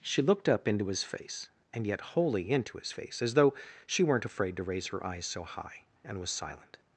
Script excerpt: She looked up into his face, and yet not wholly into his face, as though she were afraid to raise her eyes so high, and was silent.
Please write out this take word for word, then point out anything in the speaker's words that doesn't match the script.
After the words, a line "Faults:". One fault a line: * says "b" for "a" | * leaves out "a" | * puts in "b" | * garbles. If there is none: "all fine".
She looked up into his face, and yet wholly into his face, as though she weren't afraid to raise her eyes so high, and was silent.
Faults:
* leaves out "not"
* says "weren't" for "were"